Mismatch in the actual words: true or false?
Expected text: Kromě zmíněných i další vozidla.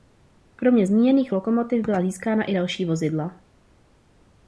true